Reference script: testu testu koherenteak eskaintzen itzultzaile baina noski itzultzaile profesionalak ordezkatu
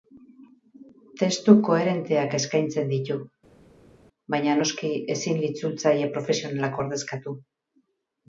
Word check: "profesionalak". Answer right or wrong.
right